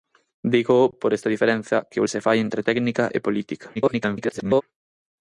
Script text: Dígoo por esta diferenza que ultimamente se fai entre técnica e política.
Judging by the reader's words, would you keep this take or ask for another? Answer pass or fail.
fail